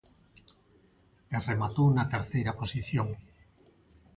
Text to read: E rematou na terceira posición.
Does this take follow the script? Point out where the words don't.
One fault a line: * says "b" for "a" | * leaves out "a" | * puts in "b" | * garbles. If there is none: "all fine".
all fine